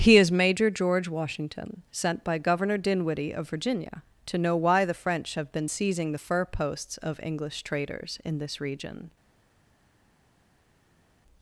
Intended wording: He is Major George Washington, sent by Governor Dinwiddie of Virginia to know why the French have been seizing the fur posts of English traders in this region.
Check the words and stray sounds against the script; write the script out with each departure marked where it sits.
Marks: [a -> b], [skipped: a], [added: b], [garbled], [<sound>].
He is Major George Washington, sent by Governor Dinwiddie of Virginia to know why the French have been seizing the fur posts of English traders in this region.